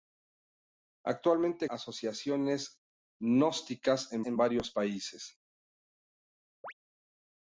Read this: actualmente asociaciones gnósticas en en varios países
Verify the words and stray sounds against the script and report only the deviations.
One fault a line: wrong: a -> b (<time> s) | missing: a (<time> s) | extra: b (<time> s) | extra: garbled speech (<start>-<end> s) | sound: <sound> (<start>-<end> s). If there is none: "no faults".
sound: chirp (6.6-6.7 s)